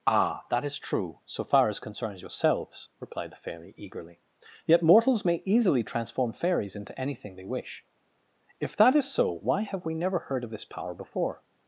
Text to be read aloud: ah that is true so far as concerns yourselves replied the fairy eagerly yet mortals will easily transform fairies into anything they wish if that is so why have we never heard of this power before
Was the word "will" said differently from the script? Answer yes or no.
yes